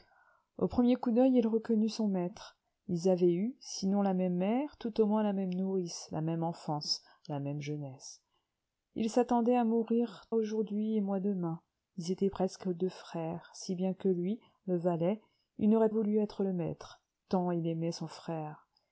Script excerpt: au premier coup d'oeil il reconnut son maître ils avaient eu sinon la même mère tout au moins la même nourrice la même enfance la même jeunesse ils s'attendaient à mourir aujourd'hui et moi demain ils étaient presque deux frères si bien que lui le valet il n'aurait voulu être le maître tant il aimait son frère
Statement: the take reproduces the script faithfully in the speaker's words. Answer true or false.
true